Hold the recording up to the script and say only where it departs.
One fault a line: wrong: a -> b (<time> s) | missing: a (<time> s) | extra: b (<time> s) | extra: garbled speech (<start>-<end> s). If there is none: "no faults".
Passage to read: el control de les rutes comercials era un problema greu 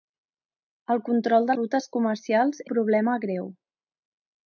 missing: les (1.6 s)
missing: era (2.6 s)